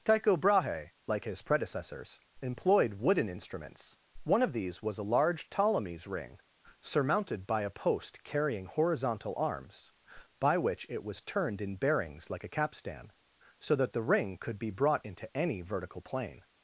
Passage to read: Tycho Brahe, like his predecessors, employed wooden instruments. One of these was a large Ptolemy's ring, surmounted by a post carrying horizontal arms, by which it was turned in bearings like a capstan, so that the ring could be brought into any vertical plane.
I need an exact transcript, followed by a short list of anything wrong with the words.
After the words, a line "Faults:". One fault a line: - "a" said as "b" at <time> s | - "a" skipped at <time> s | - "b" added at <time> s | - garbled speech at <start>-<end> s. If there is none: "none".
Tycho Brahe, like his predecessors, employed wooden instruments. One of these was a large Ptolemy's ring, surmounted by a post carrying horizontal arms, by which it was turned in bearings like a capstan, so that the ring could be brought into any vertical plane.
Faults:
none